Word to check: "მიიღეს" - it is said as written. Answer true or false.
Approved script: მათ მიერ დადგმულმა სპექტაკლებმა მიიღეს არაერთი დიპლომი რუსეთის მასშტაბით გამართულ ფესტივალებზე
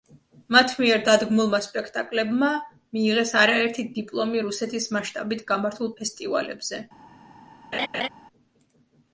true